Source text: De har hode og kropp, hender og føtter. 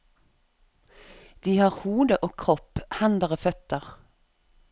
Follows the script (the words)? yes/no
yes